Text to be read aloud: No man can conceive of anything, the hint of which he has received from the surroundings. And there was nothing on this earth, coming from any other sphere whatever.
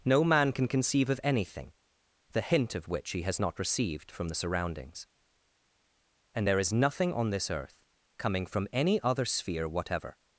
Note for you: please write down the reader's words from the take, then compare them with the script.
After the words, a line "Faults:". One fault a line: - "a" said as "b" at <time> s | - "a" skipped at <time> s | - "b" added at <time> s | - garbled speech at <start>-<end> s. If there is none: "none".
No man can conceive of anything, the hint of which he has not received from the surroundings. And there is nothing on this earth, coming from any other sphere whatever.
Faults:
- "not" added at 3.4 s
- "was" said as "is" at 6.6 s